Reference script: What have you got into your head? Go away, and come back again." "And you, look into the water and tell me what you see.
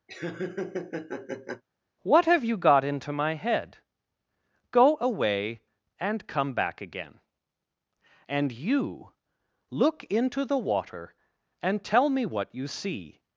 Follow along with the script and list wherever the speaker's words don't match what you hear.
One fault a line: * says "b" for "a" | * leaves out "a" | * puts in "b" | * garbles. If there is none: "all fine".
* says "my" for "your"